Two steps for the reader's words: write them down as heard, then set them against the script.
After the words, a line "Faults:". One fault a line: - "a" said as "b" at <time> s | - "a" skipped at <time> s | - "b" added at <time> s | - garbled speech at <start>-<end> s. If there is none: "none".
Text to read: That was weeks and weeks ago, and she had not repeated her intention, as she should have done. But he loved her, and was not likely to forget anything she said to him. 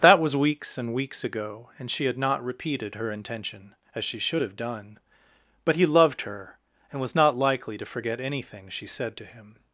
That was weeks and weeks ago, and she had not repeated her intention, as she should have done. But he loved her, and was not likely to forget anything she said to him.
Faults:
none